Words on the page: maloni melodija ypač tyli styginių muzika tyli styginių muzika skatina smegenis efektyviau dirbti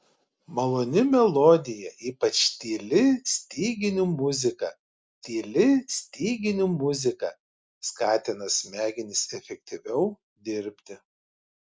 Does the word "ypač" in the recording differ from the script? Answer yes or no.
no